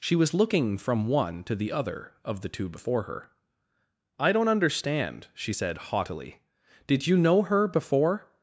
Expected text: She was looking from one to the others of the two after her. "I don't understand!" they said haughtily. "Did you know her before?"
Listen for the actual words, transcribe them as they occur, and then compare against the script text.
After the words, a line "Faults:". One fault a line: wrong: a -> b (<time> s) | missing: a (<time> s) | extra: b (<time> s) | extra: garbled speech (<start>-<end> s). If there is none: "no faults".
She was looking from one to the other of the two before her. "I don't understand!" she said haughtily. "Did you know her before?"
Faults:
wrong: others -> other (1.7 s)
wrong: after -> before (2.7 s)
wrong: they -> she (5.3 s)